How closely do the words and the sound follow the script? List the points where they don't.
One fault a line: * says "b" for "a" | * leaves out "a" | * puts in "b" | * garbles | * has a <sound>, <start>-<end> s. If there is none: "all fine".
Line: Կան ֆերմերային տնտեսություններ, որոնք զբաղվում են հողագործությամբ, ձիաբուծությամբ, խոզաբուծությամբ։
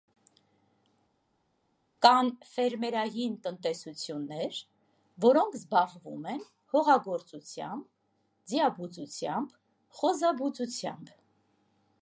all fine